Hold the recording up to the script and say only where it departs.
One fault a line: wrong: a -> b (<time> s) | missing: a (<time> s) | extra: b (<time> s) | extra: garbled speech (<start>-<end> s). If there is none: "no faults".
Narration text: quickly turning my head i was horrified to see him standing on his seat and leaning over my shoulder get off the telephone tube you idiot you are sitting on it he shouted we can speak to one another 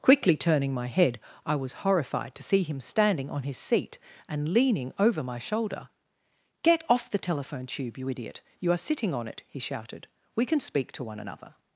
no faults